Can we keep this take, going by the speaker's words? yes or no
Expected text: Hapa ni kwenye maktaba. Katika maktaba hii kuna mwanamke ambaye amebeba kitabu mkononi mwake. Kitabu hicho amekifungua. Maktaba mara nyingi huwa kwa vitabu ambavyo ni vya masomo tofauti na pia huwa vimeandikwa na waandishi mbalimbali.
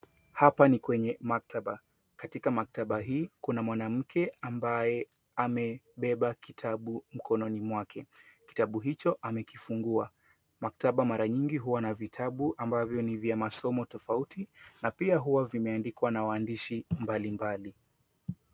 no